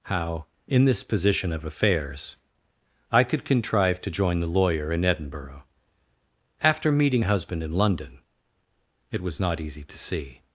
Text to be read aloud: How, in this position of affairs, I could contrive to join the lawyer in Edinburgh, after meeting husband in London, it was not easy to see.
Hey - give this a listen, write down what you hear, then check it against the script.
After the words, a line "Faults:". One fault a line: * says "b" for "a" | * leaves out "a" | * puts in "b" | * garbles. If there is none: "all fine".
How, in this position of affairs, I could contrive to join the lawyer in Edinburgh, after meeting husband in London, it was not easy to see.
Faults:
all fine